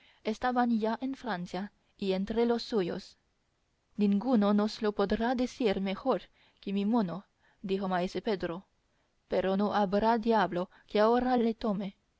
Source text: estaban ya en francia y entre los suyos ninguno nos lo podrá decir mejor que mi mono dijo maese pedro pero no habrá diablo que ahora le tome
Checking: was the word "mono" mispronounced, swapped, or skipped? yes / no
no